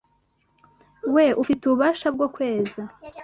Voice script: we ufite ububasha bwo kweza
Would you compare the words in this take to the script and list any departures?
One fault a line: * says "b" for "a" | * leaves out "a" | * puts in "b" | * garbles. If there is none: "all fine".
all fine